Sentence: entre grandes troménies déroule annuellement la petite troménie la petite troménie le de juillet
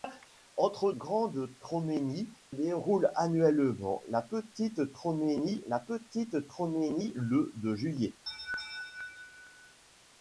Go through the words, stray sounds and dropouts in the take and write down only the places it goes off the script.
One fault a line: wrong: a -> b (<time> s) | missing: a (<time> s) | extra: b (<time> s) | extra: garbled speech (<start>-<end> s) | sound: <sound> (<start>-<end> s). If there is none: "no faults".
sound: laugh (8.3-9.8 s)